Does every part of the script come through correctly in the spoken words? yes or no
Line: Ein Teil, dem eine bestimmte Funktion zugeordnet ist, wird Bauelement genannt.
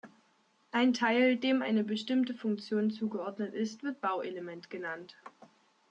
yes